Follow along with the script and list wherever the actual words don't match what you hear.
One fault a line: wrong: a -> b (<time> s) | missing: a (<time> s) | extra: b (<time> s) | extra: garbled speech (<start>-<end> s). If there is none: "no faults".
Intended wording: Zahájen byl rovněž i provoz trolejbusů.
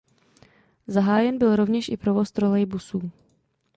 no faults